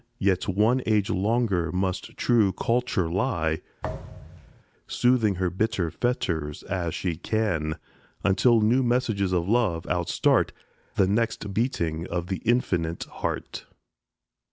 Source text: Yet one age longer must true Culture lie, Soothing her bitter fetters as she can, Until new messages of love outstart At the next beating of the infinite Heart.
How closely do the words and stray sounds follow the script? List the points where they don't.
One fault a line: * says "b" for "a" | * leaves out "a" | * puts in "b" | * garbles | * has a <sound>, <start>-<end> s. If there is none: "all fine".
* has a thud, 3.8-4.6 s
* leaves out "At"